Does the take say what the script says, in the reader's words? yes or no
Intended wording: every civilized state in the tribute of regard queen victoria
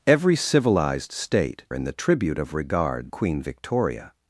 yes